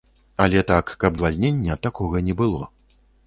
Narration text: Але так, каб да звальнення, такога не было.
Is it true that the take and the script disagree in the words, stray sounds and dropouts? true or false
true